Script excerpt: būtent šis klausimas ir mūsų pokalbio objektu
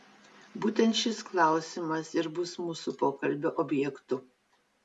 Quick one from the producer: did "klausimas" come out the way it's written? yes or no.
yes